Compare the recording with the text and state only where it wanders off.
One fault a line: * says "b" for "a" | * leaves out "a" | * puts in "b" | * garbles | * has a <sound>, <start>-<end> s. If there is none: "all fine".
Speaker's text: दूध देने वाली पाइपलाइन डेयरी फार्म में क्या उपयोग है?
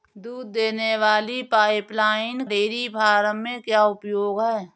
all fine